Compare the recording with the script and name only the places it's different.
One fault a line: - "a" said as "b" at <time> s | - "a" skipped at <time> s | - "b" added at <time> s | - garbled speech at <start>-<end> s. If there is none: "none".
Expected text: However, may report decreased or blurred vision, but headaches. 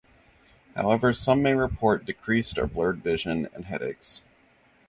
- "some" added at 1.1 s
- "but" said as "and" at 3.5 s